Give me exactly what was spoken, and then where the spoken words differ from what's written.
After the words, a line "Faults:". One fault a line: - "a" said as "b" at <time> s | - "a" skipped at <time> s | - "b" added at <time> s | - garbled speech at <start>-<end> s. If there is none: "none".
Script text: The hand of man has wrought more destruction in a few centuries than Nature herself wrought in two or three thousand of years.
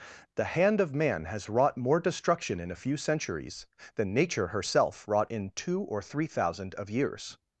The hand of man has wrought more destruction in a few centuries than Nature herself wrought in two or three thousand of years.
Faults:
none